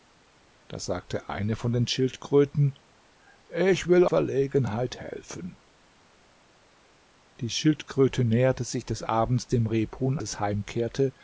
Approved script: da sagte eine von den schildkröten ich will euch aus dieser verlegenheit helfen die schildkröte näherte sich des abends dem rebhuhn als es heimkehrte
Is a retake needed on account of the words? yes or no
yes